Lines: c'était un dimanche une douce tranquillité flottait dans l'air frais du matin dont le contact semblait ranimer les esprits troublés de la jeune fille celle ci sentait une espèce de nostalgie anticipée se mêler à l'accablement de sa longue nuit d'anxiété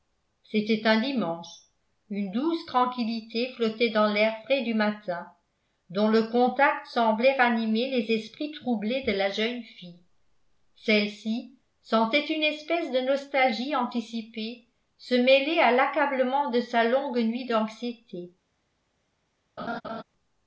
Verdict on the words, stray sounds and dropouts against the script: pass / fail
fail